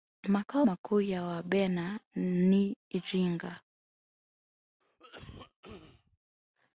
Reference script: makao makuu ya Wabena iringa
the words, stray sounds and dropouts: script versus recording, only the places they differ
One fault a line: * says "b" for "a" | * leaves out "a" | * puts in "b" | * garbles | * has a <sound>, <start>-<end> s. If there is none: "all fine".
* puts in "ni"
* has a cough, 4.8-6.2 s